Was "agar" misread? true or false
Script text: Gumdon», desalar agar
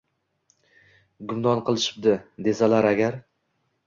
false